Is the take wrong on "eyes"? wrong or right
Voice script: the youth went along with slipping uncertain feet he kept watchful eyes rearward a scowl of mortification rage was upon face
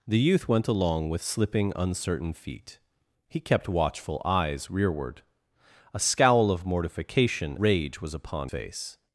right